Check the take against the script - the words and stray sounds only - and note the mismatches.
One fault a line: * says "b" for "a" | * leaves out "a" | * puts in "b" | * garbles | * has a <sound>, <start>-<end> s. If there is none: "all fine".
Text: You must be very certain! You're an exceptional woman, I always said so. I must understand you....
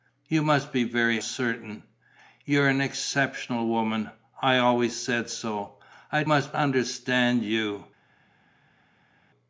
all fine